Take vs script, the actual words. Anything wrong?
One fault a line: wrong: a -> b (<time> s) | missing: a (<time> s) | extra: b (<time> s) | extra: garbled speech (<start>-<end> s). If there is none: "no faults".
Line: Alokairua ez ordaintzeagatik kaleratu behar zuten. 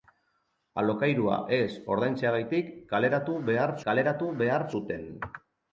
extra: kaleratu behar (3.9 s)